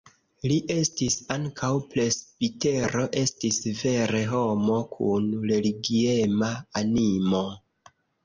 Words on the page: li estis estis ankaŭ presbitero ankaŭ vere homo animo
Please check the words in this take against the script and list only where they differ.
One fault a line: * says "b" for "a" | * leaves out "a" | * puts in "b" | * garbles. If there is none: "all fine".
* leaves out "estis"
* says "estis" for "ankaŭ"
* puts in "kun religiema"